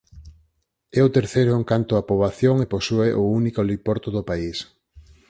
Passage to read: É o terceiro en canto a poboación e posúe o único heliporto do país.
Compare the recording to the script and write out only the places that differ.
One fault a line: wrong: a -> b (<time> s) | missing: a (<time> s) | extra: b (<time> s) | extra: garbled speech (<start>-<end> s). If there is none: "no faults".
no faults